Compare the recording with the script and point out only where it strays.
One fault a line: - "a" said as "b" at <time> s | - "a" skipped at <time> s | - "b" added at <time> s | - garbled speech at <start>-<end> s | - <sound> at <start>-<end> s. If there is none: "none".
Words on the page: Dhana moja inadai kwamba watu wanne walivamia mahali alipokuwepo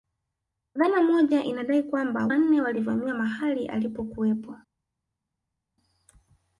- "watu" skipped at 2.3 s